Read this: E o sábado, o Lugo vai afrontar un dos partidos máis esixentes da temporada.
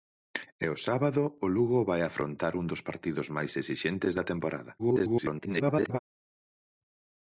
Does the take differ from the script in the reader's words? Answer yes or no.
yes